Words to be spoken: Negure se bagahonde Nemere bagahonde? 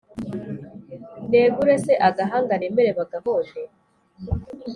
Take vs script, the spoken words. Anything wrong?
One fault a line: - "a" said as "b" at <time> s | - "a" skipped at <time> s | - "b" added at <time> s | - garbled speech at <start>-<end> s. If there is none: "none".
- "bagahonde" said as "agahanga" at 2.1 s